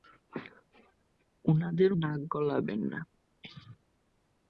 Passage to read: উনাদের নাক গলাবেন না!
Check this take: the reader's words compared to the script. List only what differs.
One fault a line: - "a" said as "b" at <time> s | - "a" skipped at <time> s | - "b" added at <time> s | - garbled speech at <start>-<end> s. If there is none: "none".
none